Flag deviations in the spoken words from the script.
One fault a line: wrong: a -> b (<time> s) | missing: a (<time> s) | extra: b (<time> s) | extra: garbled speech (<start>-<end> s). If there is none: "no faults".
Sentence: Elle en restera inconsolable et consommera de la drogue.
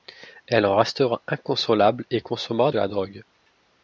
no faults